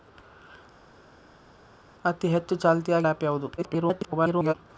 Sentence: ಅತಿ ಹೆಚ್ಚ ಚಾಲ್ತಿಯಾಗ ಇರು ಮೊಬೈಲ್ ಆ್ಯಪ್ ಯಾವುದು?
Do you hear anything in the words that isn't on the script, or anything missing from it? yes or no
yes